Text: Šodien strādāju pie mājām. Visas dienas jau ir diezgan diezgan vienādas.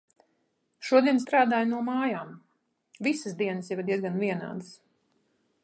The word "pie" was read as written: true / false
false